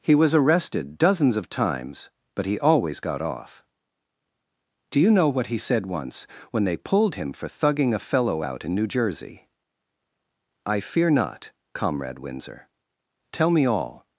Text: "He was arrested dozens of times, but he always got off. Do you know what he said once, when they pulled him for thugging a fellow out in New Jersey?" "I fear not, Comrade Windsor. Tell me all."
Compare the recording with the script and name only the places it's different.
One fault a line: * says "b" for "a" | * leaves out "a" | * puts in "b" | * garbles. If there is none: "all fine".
all fine